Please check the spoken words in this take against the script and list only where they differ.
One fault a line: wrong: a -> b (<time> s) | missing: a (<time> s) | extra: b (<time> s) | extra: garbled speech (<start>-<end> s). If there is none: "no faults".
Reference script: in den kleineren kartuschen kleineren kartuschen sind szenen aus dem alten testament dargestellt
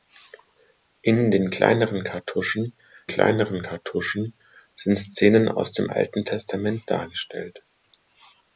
no faults